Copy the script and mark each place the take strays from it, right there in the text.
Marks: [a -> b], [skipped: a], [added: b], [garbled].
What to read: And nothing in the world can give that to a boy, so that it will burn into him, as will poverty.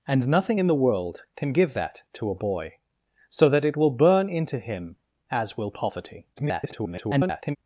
And nothing in the world can give that to a boy, so that it will burn into him, as will poverty. [garbled]